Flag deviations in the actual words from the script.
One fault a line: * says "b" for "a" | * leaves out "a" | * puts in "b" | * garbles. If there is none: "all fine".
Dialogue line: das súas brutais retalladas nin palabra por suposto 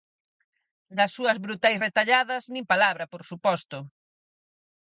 all fine